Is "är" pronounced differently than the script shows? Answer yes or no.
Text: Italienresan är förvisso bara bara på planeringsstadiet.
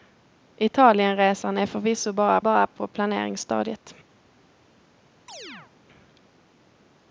no